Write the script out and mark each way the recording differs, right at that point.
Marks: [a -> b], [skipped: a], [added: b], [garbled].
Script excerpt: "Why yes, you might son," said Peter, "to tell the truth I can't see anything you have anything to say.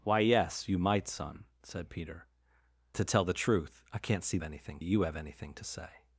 "Why yes, you might son," said Peter, "to tell the truth I can't see anything you have anything to say.